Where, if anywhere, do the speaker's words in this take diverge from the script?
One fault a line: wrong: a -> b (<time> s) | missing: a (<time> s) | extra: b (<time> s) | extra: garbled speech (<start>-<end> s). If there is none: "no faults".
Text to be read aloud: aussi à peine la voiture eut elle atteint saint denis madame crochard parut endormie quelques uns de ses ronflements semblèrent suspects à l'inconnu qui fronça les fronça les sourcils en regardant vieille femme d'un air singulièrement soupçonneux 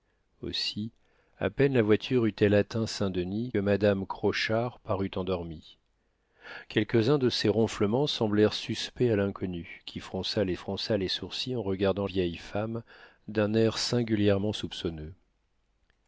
no faults